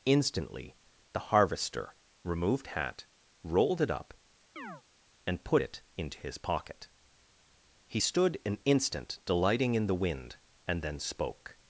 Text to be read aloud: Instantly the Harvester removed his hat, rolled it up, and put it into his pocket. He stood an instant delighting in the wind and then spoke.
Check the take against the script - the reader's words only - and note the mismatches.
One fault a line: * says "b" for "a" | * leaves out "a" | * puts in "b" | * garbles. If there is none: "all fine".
* leaves out "his"